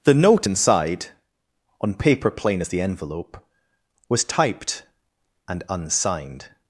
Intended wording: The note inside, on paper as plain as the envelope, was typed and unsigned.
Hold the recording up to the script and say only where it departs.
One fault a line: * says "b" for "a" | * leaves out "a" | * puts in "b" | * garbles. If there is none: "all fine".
* leaves out "as"